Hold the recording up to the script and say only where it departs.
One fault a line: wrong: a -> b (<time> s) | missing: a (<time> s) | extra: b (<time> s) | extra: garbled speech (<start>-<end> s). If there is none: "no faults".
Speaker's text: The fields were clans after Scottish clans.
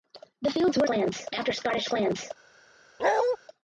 no faults